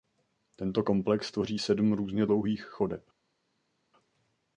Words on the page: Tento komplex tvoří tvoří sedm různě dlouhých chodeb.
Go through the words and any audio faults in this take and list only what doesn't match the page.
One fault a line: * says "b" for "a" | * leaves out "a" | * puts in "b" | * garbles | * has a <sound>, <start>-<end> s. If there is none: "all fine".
* leaves out "tvoří"